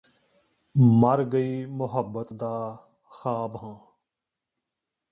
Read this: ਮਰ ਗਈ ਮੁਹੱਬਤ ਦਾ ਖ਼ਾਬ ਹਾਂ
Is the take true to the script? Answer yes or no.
yes